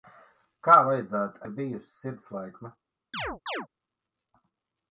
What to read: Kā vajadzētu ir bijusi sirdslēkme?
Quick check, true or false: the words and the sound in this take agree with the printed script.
false